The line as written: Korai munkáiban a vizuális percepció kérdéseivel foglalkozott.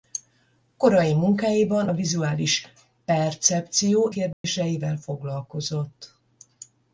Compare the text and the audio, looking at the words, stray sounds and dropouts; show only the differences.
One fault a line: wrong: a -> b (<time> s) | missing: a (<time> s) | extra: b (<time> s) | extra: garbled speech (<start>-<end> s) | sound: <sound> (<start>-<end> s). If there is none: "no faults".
sound: dropout (4.3-4.4 s)